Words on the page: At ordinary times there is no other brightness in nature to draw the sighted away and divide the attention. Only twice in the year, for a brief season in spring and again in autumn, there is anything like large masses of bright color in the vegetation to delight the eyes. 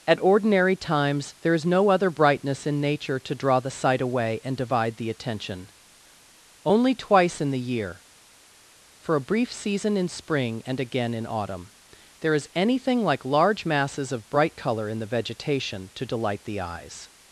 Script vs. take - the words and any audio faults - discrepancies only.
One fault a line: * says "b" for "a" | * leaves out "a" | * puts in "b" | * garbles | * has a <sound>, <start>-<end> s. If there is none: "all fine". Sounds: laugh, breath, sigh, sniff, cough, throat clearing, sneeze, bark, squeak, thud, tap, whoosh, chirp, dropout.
* says "sight" for "sighted"